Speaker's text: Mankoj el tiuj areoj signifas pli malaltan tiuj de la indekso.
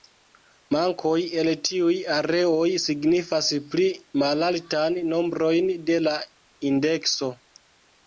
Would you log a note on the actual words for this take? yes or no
yes